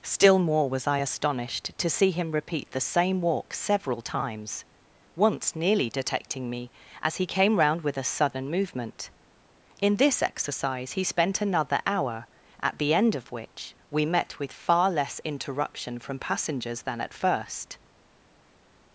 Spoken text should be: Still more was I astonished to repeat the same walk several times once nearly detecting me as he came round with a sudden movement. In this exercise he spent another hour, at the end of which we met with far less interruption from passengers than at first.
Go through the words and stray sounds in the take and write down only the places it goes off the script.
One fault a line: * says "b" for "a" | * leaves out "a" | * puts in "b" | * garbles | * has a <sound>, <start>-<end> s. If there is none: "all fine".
* puts in "see him"